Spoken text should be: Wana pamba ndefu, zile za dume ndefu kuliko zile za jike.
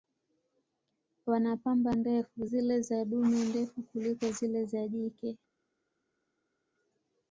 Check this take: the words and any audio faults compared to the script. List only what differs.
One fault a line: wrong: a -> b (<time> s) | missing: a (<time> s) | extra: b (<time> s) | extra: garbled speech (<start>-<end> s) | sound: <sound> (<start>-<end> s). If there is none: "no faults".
no faults